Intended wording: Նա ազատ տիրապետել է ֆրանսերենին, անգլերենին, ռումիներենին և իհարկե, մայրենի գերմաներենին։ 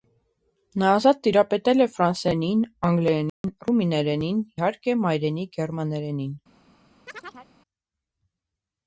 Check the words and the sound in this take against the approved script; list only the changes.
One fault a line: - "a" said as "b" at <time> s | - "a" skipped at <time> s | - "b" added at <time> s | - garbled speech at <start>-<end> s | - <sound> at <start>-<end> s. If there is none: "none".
- dropout at 3.3-3.4 s
- "և" skipped at 4.4 s
- chirp at 7.1-7.5 s